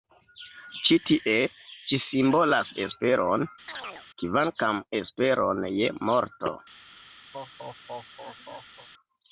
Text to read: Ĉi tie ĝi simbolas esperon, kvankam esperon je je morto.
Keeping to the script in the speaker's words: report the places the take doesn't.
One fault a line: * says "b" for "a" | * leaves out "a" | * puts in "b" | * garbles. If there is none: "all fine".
* leaves out "je"